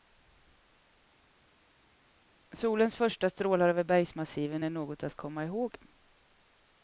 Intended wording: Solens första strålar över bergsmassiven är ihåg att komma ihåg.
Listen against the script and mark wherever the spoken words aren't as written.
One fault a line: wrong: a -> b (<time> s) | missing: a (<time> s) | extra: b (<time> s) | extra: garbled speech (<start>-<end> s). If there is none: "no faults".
wrong: ihåg -> något (4.7 s)